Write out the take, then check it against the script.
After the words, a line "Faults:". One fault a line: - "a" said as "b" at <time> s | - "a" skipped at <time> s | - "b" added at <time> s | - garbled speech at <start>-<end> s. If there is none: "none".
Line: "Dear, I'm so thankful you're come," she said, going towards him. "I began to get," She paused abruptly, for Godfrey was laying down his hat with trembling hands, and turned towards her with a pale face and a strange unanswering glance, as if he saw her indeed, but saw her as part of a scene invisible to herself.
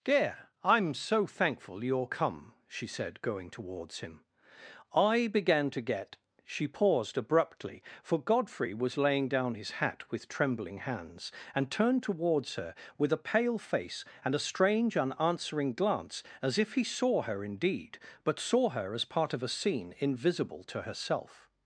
"Dear, I'm so thankful you're come," she said, going towards him. "I began to get," She paused abruptly, for Godfrey was laying down his hat with trembling hands, and turned towards her with a pale face and a strange unanswering glance, as if he saw her indeed, but saw her as part of a scene invisible to herself.
Faults:
none